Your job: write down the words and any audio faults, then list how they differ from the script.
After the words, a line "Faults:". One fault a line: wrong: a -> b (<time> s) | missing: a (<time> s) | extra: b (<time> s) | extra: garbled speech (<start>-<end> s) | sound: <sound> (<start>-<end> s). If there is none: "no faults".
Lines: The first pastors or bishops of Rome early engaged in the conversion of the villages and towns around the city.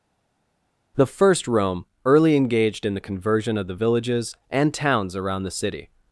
The first Rome early engaged in the conversion of the villages and towns around the city.
Faults:
missing: pastors or bishops of (1.5 s)